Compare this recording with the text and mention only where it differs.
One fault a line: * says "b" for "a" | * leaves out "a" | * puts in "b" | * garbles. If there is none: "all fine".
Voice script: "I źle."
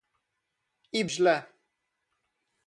all fine